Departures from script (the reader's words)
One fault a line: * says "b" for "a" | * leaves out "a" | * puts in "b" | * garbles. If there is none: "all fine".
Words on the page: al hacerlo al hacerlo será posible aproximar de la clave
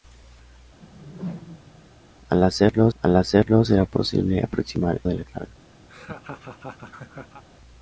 all fine